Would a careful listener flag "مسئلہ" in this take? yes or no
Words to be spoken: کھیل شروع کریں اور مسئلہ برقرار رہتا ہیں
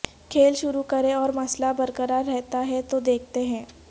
no